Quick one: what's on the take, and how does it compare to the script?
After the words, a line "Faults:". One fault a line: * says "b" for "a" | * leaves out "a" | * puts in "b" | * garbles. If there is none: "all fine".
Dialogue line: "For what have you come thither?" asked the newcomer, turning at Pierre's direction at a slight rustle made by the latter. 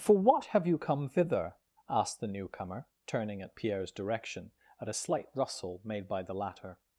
"For what have you come thither?" asked the newcomer, turning at Pierre's direction at a slight rustle made by the latter.
Faults:
all fine